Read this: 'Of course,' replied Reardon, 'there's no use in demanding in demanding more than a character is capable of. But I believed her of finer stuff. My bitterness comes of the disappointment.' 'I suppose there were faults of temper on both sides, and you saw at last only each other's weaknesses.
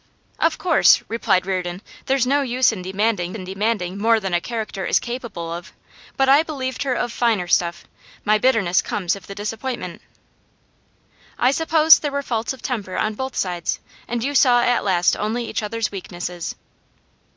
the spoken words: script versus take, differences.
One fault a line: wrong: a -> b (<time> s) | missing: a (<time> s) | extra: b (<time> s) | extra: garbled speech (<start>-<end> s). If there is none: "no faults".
no faults